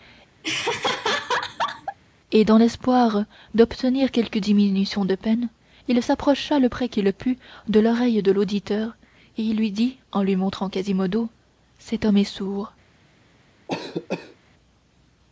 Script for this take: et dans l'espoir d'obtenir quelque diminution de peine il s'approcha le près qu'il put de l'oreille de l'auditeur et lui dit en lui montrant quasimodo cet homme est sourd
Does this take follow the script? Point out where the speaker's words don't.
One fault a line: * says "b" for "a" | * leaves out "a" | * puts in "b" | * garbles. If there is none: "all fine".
all fine